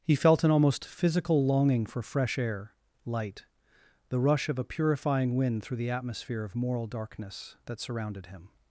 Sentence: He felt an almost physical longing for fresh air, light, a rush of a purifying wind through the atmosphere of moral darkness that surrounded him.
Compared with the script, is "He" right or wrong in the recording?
right